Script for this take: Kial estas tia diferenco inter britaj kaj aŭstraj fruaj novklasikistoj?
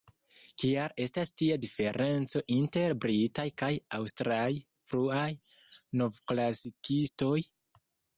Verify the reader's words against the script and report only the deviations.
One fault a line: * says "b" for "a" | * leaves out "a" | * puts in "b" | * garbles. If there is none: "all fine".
all fine